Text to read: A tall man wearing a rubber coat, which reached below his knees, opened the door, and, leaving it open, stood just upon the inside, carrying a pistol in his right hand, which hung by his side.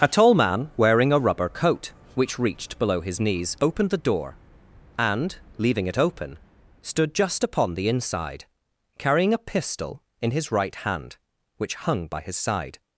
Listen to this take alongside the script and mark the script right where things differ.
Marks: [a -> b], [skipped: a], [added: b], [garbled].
A tall man wearing a rubber coat, which reached below his knees, opened the door, and, leaving it open, stood just upon the inside, carrying a pistol in his right hand, which hung by his side.